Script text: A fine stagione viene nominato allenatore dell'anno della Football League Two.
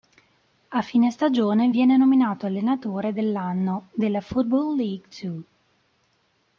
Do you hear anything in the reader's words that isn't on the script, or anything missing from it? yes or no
no